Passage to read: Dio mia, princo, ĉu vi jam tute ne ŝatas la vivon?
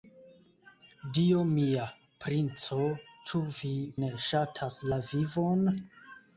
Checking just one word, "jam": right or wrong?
wrong